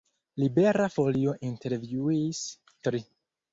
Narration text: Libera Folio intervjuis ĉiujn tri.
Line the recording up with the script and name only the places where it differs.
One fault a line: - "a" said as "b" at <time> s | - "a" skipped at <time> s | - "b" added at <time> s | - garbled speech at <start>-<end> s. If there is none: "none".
- "ĉiujn" skipped at 2.4 s